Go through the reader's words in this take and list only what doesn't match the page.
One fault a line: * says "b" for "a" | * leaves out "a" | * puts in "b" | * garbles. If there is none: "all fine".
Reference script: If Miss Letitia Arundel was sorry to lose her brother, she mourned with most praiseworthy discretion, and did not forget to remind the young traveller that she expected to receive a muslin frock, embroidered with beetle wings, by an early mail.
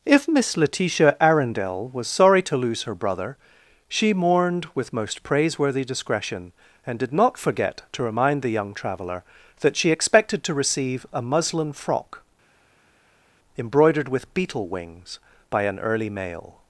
all fine